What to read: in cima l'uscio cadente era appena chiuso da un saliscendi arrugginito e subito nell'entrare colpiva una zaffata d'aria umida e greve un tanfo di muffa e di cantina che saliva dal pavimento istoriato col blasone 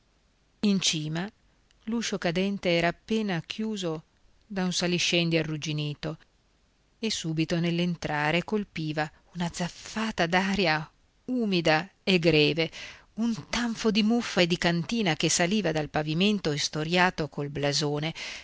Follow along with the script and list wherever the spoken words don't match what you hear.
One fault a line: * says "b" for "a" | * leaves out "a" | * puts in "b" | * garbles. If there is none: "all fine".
all fine